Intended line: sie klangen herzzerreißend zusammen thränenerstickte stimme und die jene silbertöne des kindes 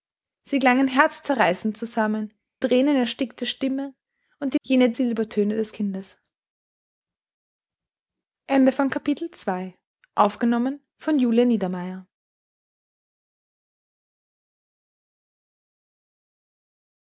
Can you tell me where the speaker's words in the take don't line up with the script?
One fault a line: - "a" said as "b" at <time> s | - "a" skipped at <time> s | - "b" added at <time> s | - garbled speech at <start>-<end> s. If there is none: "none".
none